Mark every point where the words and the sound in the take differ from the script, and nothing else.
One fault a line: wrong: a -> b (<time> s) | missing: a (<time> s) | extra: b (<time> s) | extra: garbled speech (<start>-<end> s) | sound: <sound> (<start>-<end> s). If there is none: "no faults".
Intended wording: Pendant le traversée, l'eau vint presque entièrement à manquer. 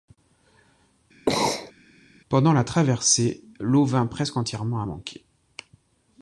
sound: sneeze (1.3-1.7 s)
wrong: le -> la (2.5 s)